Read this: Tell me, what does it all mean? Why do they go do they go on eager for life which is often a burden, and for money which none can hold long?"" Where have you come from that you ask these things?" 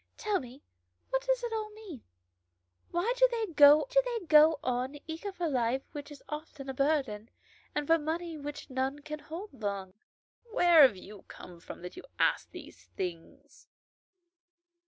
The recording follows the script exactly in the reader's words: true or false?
true